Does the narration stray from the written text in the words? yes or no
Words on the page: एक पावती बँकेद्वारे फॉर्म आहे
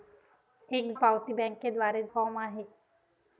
no